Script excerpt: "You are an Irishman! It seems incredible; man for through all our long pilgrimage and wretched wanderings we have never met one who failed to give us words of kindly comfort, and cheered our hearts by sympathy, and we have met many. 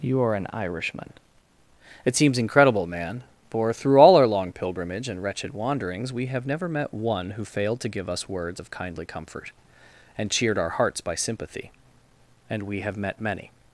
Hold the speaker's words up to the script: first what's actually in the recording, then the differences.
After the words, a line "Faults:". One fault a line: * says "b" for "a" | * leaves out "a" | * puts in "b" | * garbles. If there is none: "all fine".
"You are an Irishman! It seems incredible; man for through all our long pilgrimage and wretched wanderings we have never met one who failed to give us words of kindly comfort, and cheered our hearts by sympathy, and we have met many.
Faults:
all fine